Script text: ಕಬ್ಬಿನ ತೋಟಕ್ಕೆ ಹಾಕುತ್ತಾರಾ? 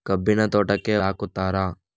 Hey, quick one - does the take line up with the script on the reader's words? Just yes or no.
yes